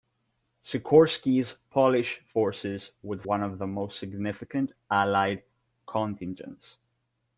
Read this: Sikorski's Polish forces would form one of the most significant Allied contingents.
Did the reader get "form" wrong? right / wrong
wrong